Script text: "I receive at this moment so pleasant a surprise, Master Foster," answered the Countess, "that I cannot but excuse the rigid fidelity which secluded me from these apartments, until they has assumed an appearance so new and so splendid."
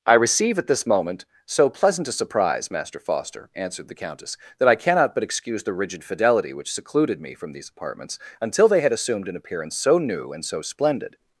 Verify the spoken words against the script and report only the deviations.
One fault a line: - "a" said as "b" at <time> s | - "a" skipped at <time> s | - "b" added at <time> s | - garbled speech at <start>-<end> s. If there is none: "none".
- "has" said as "had" at 8.8 s